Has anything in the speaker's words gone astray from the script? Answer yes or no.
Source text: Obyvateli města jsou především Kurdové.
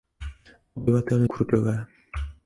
yes